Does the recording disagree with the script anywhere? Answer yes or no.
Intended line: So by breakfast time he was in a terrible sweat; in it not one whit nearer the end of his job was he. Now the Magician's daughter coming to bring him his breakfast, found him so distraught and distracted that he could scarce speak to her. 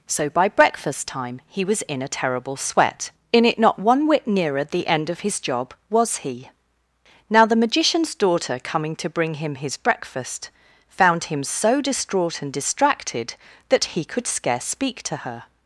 no